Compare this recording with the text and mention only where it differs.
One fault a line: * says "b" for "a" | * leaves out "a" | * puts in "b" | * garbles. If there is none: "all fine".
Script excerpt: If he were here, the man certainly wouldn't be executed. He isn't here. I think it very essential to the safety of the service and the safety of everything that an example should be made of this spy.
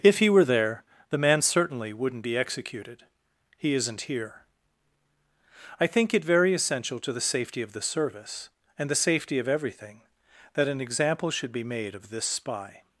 * says "there" for "here"